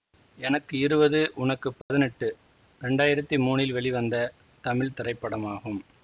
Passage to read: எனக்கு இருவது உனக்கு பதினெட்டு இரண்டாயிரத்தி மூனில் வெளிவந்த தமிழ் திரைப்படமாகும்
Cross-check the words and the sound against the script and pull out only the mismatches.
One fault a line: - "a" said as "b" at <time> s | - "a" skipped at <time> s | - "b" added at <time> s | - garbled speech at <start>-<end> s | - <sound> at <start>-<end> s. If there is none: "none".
- dropout at 1.8-1.9 s